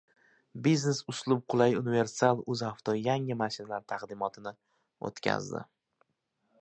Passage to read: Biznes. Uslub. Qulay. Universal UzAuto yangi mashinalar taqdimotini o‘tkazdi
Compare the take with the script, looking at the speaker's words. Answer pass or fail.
pass